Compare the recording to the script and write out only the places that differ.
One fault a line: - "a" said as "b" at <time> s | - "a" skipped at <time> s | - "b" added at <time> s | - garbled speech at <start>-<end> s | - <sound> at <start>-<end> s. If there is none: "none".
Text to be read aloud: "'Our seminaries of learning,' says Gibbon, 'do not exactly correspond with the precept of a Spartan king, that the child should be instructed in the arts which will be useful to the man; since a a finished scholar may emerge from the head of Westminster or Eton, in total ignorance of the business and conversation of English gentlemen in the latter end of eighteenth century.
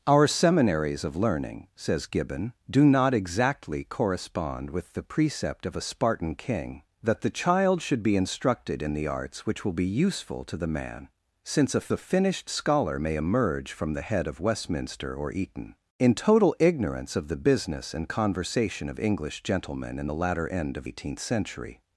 none